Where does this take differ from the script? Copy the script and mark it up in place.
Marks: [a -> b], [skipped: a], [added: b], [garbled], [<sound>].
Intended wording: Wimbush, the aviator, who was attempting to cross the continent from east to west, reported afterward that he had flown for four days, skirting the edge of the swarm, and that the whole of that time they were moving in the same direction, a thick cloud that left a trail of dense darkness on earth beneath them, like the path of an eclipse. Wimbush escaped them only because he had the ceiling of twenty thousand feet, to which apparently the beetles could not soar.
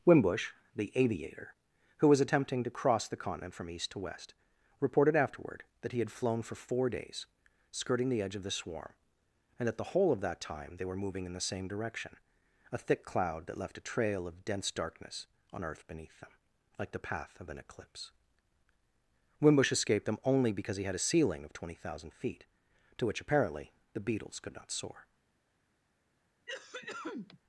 Wimbush, the aviator, who was attempting to cross the continent from east to west, reported afterward that he had flown for four days, skirting the edge of the swarm, and that the whole of that time they were moving in the same direction, a thick cloud that left a trail of dense darkness on earth beneath them, like the path of an eclipse. Wimbush escaped them only because he had [the -> a] ceiling of twenty thousand feet, to which apparently the beetles could not soar. [cough]